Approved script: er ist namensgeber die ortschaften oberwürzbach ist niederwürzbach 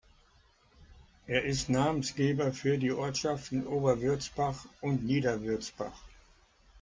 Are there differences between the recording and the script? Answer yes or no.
yes